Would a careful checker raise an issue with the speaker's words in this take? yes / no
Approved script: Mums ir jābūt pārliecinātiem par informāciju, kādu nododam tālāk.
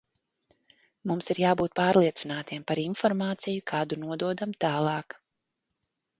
no